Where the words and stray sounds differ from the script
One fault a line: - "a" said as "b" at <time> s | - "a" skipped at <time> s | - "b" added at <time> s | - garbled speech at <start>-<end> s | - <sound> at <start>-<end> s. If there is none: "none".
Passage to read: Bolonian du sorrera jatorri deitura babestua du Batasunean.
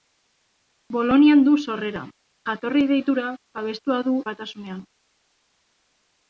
none